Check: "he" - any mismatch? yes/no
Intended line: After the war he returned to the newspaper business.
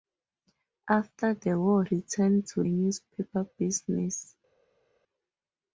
yes